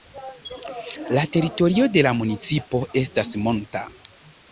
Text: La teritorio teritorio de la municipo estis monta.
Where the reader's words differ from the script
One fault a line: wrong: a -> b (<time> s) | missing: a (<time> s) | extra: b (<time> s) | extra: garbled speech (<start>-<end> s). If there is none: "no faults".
missing: teritorio (1.9 s)
wrong: estis -> estas (3.0 s)